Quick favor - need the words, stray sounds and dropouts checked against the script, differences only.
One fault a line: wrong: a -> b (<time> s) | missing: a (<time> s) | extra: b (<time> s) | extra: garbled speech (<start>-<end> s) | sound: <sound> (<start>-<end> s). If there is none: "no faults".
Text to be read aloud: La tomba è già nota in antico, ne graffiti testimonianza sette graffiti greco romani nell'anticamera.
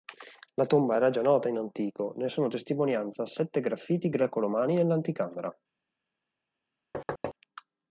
wrong: è -> era (1.0 s)
wrong: graffiti -> sono (2.3 s)
sound: thud (6.9-7.3 s)